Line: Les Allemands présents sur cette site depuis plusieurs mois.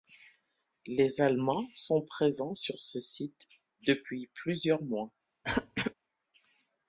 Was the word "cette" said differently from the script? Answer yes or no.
yes